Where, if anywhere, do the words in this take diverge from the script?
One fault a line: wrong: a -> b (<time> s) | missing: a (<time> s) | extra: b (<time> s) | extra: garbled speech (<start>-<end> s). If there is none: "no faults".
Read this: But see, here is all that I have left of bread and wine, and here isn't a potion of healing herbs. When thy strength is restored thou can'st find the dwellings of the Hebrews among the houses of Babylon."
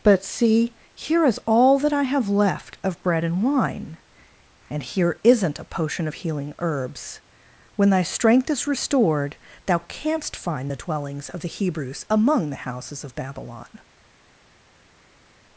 no faults